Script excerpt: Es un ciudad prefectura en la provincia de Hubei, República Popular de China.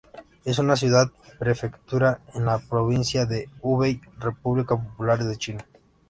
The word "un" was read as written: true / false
false